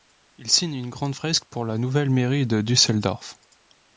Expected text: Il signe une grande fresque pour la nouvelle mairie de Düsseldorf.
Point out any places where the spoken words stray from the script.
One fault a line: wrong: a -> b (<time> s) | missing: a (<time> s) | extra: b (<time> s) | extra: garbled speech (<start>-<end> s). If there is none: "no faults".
no faults